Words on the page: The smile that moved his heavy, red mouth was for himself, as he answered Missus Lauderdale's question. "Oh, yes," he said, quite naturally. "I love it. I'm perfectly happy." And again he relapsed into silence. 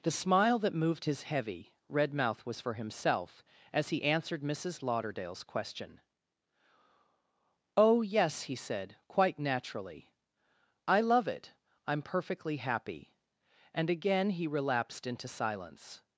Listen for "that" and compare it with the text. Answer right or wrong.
right